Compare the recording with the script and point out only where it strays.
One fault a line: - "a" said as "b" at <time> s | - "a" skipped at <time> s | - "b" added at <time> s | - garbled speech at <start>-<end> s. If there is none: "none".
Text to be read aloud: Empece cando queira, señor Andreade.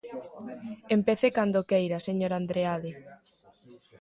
none